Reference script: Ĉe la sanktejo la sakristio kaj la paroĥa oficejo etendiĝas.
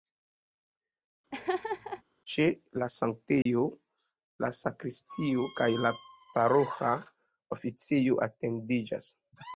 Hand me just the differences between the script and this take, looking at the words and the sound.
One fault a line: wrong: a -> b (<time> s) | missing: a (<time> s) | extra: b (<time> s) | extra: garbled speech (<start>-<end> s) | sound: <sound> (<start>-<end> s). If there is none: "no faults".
sound: laugh (1.3-2.0 s)
sound: dropout (3.4-3.5 s)